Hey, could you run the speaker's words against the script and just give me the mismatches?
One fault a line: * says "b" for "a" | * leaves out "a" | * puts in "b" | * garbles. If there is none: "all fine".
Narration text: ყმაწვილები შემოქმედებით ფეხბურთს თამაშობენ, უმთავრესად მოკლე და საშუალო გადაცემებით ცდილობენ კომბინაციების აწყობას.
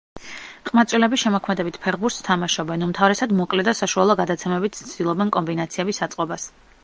all fine